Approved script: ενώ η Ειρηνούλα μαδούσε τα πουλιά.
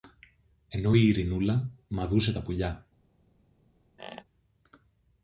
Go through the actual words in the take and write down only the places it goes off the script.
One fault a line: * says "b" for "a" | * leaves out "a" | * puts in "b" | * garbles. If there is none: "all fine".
all fine